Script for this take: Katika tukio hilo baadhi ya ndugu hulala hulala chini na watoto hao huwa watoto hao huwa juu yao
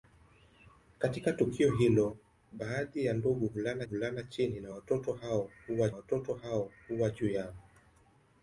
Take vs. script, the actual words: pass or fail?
pass